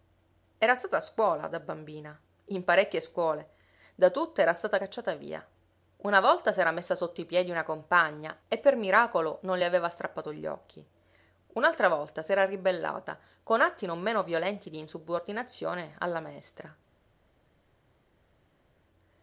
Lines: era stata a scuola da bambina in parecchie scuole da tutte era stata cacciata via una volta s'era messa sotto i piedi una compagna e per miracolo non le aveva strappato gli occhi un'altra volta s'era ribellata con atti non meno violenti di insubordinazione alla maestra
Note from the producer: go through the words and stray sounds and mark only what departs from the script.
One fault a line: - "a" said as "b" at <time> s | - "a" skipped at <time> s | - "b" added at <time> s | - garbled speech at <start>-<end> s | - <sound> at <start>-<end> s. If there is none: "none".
none